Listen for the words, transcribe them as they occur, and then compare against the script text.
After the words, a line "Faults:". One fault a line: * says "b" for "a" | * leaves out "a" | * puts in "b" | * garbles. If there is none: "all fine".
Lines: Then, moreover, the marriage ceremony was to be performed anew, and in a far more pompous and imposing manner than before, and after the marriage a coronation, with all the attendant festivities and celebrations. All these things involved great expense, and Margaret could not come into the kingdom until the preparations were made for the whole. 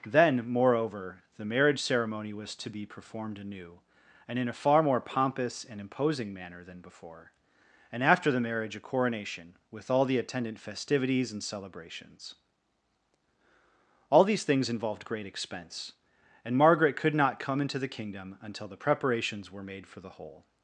Then, moreover, the marriage ceremony was to be performed anew, and in a far more pompous and imposing manner than before, and after the marriage a coronation, with all the attendant festivities and celebrations. All these things involved great expense, and Margaret could not come into the kingdom until the preparations were made for the whole.
Faults:
all fine